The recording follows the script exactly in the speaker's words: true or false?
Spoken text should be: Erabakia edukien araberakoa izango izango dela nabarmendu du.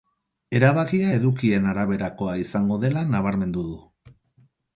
false